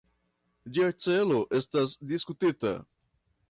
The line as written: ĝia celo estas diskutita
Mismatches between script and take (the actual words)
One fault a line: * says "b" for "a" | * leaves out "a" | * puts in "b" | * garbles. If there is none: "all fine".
all fine